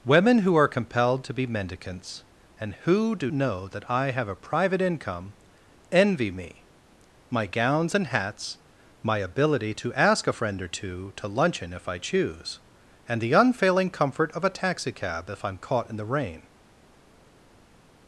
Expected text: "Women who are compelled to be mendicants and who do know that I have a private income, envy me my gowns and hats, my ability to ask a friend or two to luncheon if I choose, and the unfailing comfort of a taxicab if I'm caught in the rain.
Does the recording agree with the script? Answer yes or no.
yes